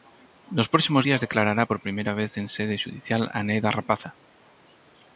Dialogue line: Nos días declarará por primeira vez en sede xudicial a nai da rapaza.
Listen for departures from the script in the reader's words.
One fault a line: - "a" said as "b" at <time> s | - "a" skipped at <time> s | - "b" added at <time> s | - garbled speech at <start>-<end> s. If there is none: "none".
- "próximos" added at 0.7 s